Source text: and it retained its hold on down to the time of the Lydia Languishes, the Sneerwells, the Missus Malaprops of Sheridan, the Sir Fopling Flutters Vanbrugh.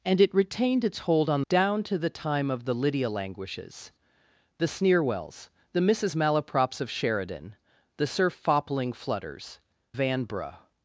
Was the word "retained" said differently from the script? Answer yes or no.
no